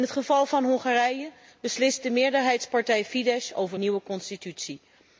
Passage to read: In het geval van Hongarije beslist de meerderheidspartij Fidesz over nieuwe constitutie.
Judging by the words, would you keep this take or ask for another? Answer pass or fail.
pass